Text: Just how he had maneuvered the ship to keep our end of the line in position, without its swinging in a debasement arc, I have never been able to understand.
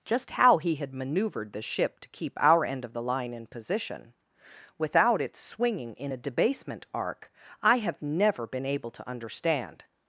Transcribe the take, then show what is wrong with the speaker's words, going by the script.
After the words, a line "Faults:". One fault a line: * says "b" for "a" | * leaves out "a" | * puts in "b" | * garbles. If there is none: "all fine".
Just how he had maneuvered the ship to keep our end of the line in position, without its swinging in a debasement arc, I have never been able to understand.
Faults:
all fine